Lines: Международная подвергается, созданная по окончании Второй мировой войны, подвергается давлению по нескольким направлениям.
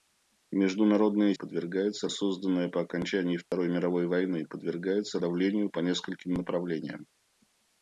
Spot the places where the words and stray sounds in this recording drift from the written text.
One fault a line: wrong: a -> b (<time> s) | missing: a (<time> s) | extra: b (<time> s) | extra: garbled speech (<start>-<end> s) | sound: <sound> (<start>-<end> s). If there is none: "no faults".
sound: dropout (3.4-3.5 s)